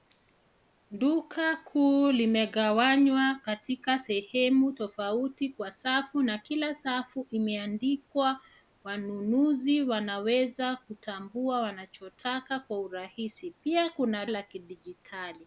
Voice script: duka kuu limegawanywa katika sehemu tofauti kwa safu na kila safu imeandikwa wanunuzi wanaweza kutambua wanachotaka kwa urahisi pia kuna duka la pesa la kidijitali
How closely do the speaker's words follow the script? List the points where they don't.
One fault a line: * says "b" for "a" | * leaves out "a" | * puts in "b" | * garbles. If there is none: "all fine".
* leaves out "duka la pesa"